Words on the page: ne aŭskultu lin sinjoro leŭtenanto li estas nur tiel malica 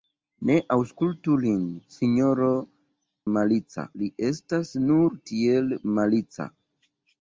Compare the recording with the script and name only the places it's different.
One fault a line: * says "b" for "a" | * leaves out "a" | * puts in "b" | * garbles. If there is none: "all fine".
* says "malica" for "leŭtenanto"